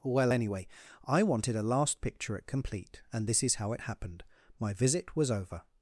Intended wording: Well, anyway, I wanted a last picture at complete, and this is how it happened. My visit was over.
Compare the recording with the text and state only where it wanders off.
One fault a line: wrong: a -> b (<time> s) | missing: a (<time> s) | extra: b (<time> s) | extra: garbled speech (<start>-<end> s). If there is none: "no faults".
no faults